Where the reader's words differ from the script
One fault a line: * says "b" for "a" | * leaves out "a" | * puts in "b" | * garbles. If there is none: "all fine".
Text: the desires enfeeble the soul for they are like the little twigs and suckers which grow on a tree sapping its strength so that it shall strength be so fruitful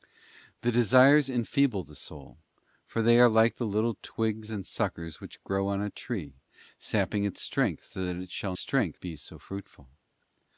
all fine